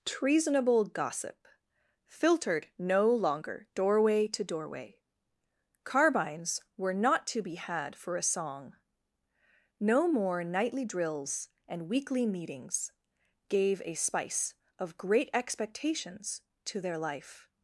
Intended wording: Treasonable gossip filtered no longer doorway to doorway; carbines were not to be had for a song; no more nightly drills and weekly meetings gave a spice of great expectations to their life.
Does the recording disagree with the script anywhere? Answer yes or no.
no